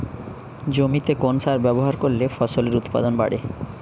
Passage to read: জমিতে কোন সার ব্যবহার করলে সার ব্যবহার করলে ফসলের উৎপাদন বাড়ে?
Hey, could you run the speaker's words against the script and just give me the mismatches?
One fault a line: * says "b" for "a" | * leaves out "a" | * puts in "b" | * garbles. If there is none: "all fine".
* leaves out "সার ব্যবহার করলে"